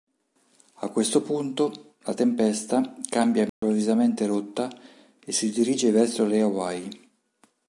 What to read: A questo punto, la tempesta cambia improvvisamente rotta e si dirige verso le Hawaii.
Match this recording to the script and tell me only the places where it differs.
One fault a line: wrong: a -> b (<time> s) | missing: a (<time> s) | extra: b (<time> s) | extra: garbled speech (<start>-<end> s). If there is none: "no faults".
no faults